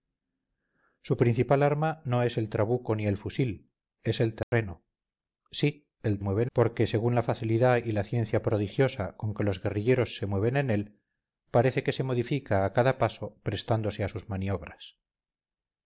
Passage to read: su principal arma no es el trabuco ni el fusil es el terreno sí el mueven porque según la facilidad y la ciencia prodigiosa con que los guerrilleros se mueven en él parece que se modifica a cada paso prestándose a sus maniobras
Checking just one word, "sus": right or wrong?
right